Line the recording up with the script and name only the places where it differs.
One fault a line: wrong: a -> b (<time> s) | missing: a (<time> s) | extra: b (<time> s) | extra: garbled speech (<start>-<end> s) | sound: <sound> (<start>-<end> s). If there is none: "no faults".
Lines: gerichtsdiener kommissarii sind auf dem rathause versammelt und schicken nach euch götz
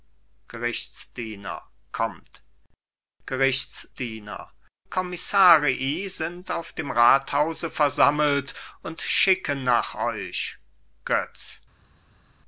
no faults